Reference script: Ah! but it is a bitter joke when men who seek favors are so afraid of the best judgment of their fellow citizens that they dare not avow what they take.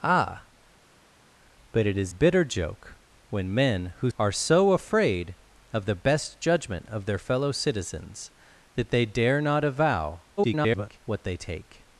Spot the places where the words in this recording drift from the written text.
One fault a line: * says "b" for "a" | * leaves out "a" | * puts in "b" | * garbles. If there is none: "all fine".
* leaves out "a"
* leaves out "seek favors"
* garbles